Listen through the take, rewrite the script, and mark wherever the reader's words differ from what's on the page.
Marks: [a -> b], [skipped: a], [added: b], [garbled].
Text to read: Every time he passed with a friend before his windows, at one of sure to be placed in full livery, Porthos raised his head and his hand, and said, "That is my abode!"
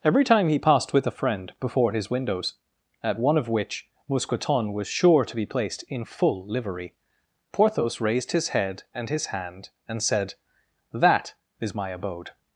Every time he passed with a friend before his windows, at one of [added: which Mousqueton was] sure to be placed in full livery, Porthos raised his head and his hand, and said, "That is my abode!"